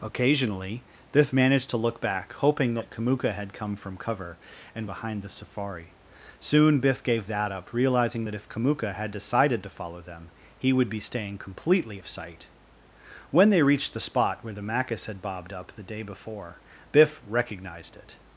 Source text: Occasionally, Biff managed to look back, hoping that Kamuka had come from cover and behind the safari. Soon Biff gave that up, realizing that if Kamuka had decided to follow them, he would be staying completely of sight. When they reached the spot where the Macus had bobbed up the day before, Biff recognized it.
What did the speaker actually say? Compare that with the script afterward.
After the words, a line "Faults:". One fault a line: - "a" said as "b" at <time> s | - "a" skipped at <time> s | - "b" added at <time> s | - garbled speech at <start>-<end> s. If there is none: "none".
Occasionally, Biff managed to look back, hoping that Kamuka had come from cover and behind the safari. Soon Biff gave that up, realizing that if Kamuka had decided to follow them, he would be staying completely of sight. When they reached the spot where the Macus had bobbed up the day before, Biff recognized it.
Faults:
none